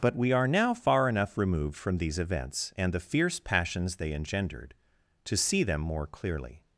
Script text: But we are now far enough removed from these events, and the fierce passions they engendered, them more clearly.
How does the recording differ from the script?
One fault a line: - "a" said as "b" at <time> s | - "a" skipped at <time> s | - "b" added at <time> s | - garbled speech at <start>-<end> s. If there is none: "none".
- "to see" added at 5.2 s